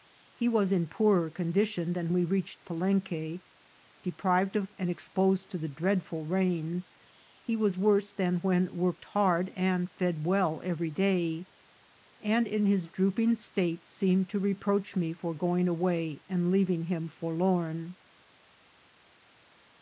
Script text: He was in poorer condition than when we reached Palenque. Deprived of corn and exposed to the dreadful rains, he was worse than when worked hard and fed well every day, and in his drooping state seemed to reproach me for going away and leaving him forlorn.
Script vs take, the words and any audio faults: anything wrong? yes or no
yes